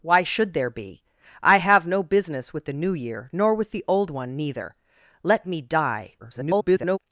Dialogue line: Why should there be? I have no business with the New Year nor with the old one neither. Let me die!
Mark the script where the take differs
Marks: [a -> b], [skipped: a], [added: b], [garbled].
Why should there be? I have no business with the New Year nor with the old one neither. Let me die! [garbled]